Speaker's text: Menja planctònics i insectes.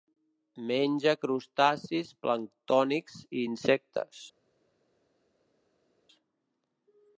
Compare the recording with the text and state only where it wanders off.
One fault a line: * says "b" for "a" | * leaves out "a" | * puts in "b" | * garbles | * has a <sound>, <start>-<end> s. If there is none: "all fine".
* puts in "crustacis"